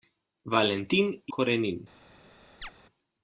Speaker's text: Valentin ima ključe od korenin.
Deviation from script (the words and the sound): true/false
true